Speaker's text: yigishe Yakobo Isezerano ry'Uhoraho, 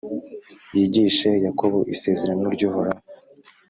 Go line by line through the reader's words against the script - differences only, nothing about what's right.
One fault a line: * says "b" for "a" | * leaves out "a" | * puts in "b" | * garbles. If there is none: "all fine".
all fine